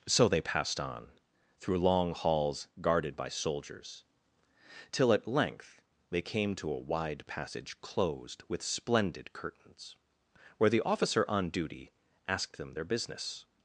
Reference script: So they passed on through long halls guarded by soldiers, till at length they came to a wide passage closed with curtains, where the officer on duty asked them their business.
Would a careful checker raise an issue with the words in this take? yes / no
yes